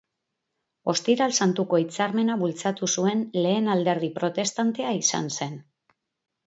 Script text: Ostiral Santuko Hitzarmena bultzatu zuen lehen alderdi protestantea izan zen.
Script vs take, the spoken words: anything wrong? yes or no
no